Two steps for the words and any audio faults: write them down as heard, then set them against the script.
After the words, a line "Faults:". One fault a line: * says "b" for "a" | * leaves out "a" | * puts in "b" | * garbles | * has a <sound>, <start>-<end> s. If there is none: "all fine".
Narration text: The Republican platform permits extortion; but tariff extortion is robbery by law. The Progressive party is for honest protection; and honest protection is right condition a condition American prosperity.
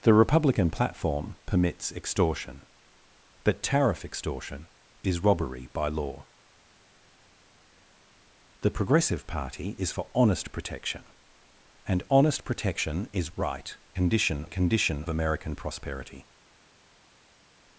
The Republican platform permits extortion; but tariff extortion is robbery by law. The Progressive party is for honest protection; and honest protection is right condition a condition American prosperity.
Faults:
all fine